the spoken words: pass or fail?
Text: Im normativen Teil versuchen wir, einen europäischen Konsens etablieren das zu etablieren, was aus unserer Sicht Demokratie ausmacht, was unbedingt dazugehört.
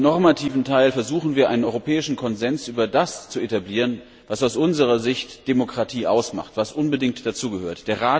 fail